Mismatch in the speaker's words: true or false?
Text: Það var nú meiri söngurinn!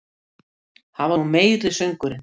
true